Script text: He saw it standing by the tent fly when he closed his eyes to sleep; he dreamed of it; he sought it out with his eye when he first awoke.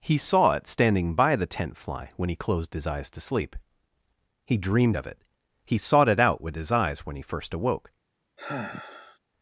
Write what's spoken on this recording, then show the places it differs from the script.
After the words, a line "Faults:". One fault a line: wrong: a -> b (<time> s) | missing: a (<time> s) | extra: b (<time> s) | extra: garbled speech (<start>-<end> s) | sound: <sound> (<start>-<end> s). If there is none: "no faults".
He saw it standing by the tent fly when he closed his eyes to sleep; he dreamed of it; he sought it out with his eyes when he first awoke.
Faults:
wrong: eye -> eyes (6.7 s)
sound: sigh (8.4-9.2 s)